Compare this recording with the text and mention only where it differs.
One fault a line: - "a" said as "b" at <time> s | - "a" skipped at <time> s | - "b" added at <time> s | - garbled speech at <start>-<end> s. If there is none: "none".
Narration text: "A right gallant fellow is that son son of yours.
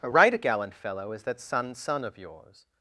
none